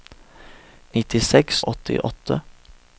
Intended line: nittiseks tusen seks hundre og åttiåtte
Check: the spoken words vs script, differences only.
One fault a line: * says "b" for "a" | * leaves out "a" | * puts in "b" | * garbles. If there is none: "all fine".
* leaves out "tusen seks hundre"